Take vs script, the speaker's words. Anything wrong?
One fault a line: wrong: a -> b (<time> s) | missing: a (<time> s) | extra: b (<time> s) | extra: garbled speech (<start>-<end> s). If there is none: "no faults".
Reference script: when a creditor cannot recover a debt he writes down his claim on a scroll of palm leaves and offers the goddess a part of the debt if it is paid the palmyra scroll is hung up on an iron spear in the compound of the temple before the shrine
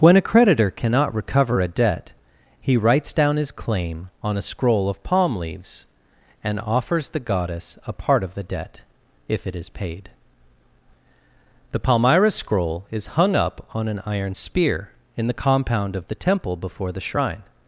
no faults